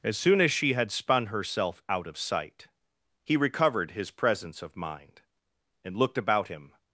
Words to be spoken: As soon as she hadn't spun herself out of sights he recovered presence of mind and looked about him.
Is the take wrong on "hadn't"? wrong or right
wrong